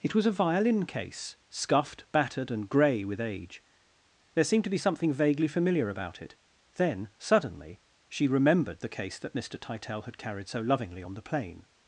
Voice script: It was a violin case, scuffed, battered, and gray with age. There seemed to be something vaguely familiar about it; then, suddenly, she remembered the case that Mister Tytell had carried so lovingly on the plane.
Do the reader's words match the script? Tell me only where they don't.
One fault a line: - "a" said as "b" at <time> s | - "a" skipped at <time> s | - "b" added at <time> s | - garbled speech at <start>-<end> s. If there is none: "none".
none